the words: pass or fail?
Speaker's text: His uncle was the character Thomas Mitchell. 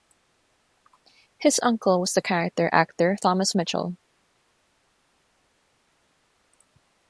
fail